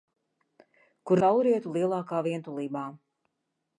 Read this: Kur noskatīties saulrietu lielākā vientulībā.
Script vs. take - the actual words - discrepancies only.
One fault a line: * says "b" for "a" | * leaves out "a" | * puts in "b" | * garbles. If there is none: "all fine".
* leaves out "noskatīties"